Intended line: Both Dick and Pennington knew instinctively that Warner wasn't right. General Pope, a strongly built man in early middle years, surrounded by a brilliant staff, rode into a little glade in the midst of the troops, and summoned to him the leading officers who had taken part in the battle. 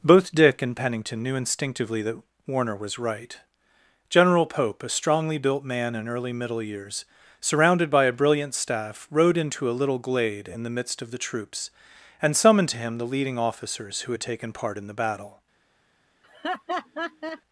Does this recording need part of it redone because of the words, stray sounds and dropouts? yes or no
yes